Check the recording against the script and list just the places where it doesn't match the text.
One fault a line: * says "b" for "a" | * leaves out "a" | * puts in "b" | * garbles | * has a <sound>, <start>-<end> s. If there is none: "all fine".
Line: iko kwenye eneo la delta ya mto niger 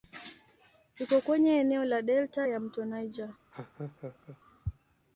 * has a laugh, 3.5-4.4 s